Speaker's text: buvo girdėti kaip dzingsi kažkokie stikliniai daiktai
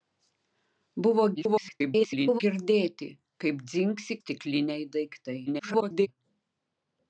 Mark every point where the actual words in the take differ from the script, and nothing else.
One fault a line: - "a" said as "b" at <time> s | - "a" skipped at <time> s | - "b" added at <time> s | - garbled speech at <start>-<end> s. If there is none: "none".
- garbled speech at 1.4-2.4 s
- "kažkokie" skipped at 4.2 s
- garbled speech at 5.5-6.1 s